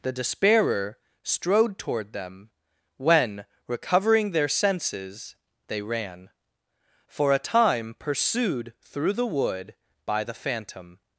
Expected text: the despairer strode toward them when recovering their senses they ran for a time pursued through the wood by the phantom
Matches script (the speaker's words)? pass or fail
pass